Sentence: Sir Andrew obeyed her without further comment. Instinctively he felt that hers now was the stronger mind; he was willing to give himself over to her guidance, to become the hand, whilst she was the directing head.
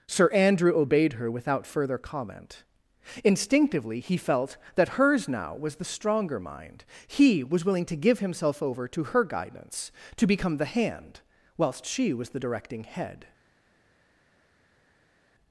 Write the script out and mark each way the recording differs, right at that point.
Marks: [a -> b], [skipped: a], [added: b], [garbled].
Sir Andrew obeyed her without further comment. Instinctively he felt that hers now was the stronger mind; he was willing to give himself over to her guidance, to become the hand, whilst she was the directing head.